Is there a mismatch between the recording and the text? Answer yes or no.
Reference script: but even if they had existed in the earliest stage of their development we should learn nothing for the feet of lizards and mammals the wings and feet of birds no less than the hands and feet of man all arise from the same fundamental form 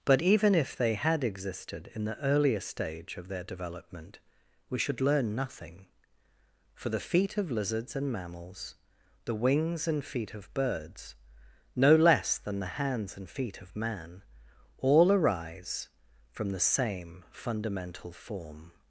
yes